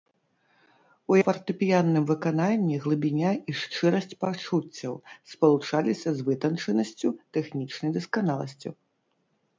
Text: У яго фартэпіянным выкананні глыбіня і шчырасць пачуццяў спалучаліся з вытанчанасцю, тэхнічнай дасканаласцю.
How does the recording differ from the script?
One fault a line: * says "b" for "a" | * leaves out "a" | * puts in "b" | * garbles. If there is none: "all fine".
* leaves out "яго"